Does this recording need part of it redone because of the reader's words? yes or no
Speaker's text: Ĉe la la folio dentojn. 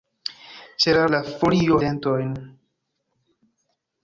no